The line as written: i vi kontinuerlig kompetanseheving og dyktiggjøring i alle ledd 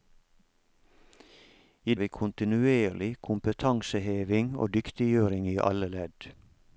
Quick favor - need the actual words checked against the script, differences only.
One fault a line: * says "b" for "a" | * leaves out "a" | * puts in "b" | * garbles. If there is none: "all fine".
all fine